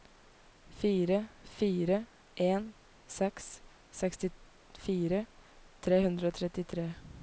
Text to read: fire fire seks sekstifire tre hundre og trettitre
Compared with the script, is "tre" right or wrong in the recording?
right